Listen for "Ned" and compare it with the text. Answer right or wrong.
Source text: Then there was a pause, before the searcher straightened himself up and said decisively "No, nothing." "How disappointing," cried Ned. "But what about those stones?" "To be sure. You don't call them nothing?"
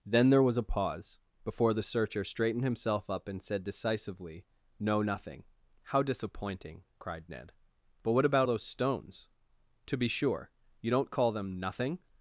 right